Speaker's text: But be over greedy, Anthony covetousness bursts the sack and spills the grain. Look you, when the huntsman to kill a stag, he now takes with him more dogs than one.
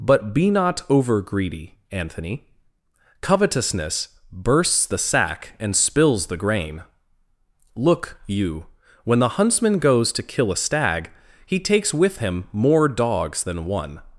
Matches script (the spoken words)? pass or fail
fail